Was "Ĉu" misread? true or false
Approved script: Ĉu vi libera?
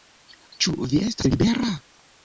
false